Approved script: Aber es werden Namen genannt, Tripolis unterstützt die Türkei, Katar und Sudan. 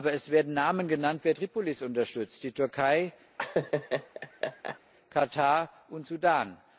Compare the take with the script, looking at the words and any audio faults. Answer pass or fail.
fail